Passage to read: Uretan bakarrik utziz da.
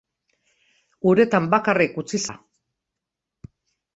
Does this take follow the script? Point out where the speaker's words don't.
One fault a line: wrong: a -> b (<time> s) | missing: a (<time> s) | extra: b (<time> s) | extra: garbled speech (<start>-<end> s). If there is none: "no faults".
no faults